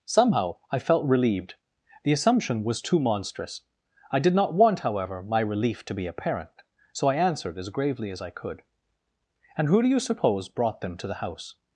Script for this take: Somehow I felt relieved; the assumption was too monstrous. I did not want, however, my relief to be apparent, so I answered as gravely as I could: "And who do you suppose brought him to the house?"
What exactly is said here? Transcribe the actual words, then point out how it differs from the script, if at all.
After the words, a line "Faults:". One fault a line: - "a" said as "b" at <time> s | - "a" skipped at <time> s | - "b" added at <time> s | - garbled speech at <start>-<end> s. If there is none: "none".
Somehow I felt relieved; the assumption was too monstrous. I did not want, however, my relief to be apparent, so I answered as gravely as I could: "And who do you suppose brought them to the house?"
Faults:
- "him" said as "them" at 10.8 s